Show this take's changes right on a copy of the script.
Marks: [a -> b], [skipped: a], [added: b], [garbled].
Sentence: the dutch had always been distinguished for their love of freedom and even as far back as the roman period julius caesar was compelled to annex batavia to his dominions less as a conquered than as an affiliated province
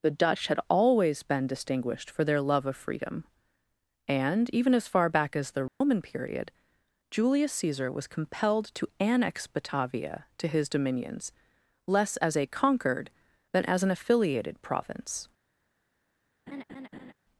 the dutch had always been distinguished for their love of freedom and even as far back as the roman period julius caesar was compelled to annex batavia to his dominions less as a conquered than as an affiliated province